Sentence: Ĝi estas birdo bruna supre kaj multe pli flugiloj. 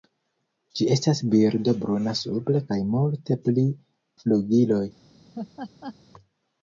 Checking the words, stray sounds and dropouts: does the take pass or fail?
fail